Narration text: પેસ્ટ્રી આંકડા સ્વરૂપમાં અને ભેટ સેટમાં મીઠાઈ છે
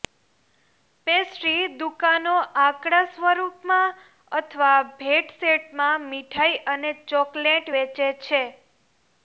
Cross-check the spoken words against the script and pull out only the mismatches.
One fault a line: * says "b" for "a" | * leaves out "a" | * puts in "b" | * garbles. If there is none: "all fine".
* puts in "દુકાનો"
* says "અથવા" for "અને"
* puts in "અને ચોકલેટ વેચે"